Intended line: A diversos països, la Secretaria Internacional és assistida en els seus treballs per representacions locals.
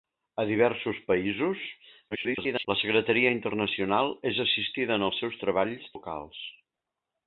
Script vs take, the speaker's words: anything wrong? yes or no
yes